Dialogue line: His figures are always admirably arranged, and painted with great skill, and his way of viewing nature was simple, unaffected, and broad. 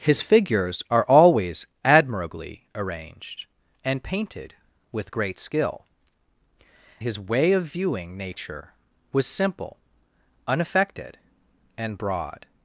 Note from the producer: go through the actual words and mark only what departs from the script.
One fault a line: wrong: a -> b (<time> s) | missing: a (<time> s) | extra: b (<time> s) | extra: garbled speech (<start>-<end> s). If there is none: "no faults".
missing: and (5.8 s)